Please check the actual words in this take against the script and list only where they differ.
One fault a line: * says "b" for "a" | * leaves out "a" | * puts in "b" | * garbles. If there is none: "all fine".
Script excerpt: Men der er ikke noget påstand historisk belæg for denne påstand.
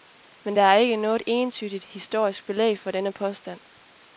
* says "entydigt" for "påstand"